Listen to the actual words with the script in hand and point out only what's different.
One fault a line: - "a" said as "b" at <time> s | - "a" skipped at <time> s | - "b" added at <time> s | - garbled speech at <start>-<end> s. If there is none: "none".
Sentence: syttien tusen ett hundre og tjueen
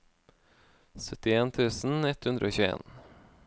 none